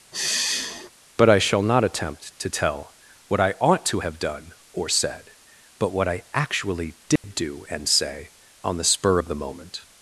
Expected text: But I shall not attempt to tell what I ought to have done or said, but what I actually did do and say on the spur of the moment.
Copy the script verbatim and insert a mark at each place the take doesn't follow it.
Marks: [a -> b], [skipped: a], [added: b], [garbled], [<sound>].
[sigh] But I shall not attempt to tell what I ought to have done or said, but what I actually did [dropout] do and say on the spur of the moment.